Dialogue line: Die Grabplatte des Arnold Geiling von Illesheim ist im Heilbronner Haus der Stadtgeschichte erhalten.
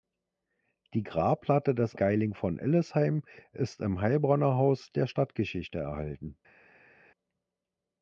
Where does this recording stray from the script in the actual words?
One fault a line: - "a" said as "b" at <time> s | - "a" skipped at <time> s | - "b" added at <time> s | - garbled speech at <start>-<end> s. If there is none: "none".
- "Arnold" skipped at 1.9 s